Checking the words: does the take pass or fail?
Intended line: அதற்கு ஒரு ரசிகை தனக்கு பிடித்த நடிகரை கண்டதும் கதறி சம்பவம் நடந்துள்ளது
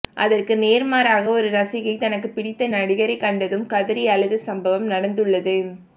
fail